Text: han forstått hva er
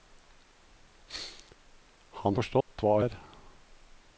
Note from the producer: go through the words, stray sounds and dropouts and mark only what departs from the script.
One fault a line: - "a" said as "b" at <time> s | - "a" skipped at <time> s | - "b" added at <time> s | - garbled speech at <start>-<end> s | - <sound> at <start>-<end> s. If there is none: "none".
- dropout at 2.6-2.7 s